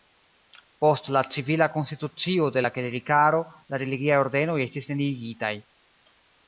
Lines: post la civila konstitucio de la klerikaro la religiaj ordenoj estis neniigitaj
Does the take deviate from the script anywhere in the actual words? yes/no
no